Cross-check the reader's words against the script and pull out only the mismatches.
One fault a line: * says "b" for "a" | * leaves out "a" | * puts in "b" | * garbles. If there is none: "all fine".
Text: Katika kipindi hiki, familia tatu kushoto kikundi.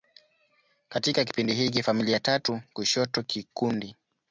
all fine